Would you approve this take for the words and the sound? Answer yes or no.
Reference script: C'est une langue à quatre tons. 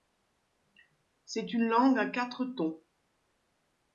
yes